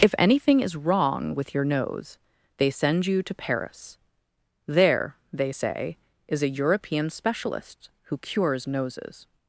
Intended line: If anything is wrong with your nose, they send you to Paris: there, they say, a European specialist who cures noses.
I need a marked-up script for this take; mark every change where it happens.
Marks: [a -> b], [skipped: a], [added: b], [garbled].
If anything is wrong with your nose, they send you to Paris: there, they say, [added: is] a European specialist who cures noses.